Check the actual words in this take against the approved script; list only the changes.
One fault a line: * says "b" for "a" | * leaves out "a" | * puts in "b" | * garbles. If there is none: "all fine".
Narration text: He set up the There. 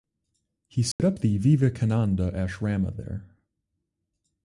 * puts in "Vivekananda Ashrama"